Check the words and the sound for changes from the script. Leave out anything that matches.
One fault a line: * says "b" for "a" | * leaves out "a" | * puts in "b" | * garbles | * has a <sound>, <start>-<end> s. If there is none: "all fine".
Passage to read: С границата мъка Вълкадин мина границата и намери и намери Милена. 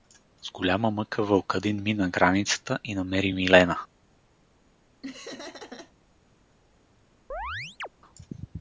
* says "голяма" for "границата"
* leaves out "и намери"
* has a laugh, 5.0-5.9 s
* has a chirp, 7.3-7.9 s